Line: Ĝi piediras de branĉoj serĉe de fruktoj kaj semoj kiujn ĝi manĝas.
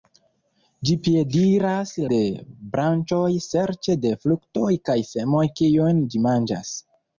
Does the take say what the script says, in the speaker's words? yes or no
yes